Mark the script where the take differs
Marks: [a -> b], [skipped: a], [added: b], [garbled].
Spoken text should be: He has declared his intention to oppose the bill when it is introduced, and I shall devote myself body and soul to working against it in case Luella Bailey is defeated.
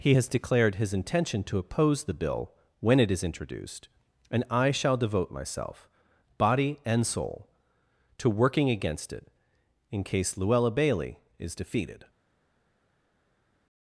He has declared his intention to oppose the bill when it is introduced, and I shall devote myself body and soul to working against it in case Luella Bailey is defeated.